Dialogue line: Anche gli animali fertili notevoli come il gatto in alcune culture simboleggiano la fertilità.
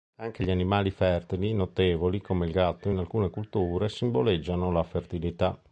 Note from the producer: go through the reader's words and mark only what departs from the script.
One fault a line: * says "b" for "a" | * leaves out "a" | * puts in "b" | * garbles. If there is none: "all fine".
all fine